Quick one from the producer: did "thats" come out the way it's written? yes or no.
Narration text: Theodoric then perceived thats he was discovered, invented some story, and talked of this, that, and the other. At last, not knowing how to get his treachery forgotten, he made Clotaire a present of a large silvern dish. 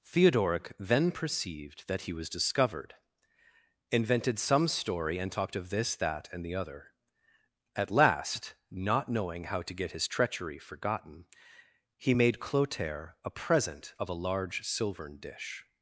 no